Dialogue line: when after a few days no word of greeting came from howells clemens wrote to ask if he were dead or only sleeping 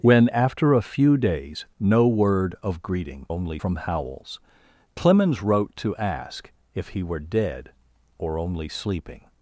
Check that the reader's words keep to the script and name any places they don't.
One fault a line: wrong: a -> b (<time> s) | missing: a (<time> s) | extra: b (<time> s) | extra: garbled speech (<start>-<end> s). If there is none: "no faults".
wrong: came -> only (3.3 s)